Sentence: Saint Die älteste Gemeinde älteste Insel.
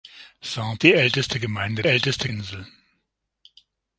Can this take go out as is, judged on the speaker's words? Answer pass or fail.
pass